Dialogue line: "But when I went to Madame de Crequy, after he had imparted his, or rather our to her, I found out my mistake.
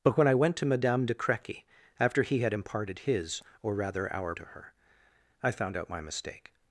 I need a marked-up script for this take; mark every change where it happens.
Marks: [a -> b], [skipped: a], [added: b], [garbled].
"But when I went to Madame de Crequy, after he had imparted his, or rather our to her, I found out my mistake.